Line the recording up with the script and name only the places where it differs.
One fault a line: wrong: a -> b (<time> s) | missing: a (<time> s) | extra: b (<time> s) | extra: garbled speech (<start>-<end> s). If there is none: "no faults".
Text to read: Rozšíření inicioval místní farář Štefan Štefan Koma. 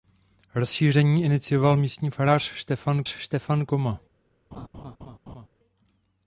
no faults